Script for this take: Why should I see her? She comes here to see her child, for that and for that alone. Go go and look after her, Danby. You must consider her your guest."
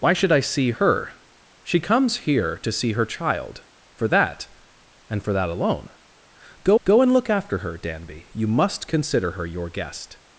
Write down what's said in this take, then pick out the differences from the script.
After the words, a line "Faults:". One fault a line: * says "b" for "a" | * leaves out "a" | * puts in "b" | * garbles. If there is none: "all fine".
Why should I see her? She comes here to see her child, for that and for that alone. Go go and look after her, Danby. You must consider her your guest."
Faults:
all fine